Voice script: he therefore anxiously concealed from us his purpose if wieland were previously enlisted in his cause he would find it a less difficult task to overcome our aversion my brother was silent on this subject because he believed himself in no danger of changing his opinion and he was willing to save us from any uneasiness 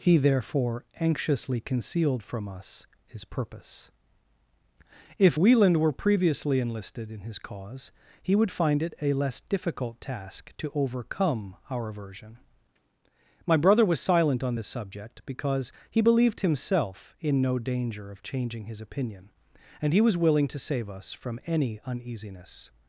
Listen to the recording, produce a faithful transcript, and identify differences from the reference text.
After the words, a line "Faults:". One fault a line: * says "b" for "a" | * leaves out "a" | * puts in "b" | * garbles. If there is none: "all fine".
he therefore anxiously concealed from us his purpose if wieland were previously enlisted in his cause he would find it a less difficult task to overcome our aversion my brother was silent on this subject because he believed himself in no danger of changing his opinion and he was willing to save us from any uneasiness
Faults:
all fine